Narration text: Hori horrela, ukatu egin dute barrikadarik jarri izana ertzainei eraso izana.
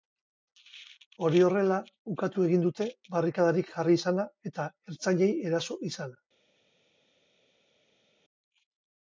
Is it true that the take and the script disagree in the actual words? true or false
true